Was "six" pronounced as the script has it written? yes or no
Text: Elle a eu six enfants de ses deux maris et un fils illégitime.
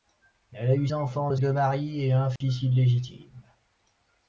no